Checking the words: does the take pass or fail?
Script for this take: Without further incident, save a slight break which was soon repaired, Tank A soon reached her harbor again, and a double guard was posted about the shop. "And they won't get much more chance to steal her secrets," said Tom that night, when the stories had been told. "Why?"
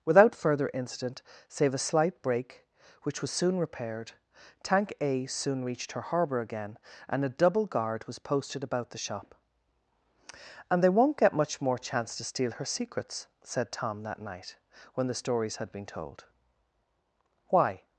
pass